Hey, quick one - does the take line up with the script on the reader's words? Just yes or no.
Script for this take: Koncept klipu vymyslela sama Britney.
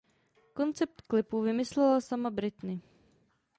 yes